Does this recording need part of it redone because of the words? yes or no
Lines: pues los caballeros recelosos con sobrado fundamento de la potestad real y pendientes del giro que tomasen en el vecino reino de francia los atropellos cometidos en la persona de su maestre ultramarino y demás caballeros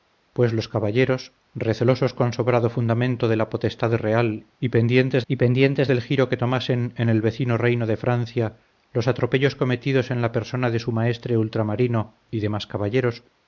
yes